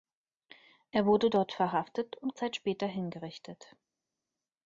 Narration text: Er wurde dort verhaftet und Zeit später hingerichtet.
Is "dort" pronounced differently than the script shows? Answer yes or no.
no